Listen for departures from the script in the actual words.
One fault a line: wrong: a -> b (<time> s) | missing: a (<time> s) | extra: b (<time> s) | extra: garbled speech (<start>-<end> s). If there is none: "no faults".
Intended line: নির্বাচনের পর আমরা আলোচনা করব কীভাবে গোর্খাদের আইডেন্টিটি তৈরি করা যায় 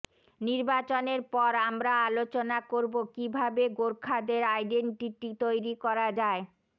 no faults